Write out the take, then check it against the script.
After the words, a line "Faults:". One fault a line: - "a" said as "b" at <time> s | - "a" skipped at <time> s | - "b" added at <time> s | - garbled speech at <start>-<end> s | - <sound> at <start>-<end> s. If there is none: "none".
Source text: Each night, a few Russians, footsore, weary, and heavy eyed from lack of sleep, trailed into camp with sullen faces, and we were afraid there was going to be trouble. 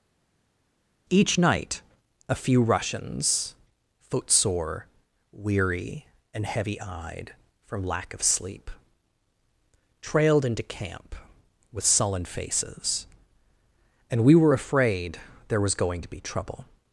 Each night, a few Russians, footsore, weary, and heavy eyed from lack of sleep, trailed into camp with sullen faces, and we were afraid there was going to be trouble.
Faults:
none